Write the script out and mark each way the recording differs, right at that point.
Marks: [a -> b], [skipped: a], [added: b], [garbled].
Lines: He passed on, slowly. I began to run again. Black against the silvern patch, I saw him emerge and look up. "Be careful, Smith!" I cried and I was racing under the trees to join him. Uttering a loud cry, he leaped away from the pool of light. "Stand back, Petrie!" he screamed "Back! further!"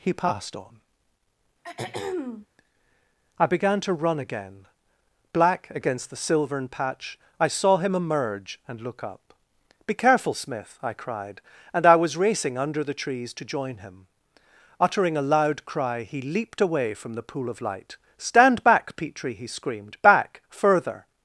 He passed on, [skipped: slowly.] I began to run again. Black against the silvern patch, I saw him emerge and look up. "Be careful, Smith!" I cried and I was racing under the trees to join him. Uttering a loud cry, he leaped away from the pool of light. "Stand back, Petrie!" he screamed "Back! further!"